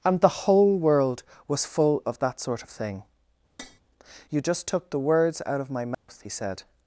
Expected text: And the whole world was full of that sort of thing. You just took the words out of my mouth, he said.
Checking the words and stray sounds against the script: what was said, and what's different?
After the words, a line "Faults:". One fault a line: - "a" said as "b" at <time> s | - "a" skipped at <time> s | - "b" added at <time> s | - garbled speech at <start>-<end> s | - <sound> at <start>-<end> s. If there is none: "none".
And the whole world was full of that sort of thing. You just took the words out of my mouth, he said.
Faults:
- tap at 3.6-3.8 s
- dropout at 5.9-6.1 s